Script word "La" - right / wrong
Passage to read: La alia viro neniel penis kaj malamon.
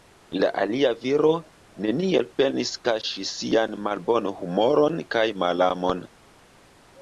right